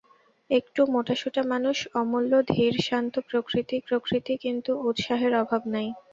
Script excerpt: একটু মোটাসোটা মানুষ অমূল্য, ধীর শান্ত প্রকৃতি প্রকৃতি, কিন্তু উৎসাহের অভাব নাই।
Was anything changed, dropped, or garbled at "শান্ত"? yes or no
no